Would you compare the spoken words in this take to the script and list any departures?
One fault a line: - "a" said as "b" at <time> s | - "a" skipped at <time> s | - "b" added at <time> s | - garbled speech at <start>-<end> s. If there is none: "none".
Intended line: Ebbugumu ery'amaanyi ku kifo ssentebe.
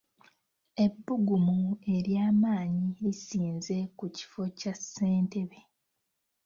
- "lisinze" added at 3.0 s
- "kya" added at 4.6 s